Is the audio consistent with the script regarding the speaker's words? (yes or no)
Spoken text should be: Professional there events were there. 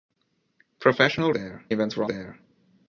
yes